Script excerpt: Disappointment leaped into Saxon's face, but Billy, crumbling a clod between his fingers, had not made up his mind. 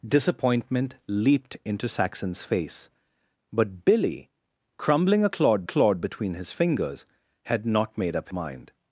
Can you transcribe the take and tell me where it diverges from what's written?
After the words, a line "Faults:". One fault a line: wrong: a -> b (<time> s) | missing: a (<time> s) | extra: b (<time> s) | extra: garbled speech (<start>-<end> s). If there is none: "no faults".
Disappointment leaped into Saxon's face, but Billy, crumbling a clod clod between his fingers, had not made up mind.
Faults:
extra: clod (5.6 s)
missing: his (8.3 s)